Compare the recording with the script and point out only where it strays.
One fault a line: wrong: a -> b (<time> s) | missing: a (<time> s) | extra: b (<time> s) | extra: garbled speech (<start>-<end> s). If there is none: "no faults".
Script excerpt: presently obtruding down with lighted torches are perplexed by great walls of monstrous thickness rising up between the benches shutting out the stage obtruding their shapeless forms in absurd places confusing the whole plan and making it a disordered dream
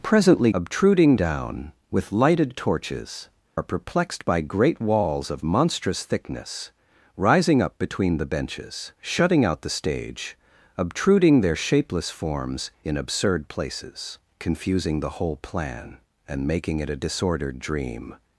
no faults